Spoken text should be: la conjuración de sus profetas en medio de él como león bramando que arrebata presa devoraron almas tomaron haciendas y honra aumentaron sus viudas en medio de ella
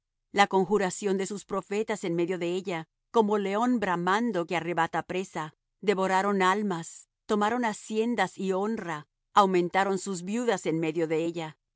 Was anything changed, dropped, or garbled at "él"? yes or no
yes